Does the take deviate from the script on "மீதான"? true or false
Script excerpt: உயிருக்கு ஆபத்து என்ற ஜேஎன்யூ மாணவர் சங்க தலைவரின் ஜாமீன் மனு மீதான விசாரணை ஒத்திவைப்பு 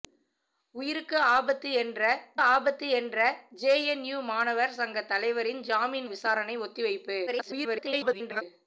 true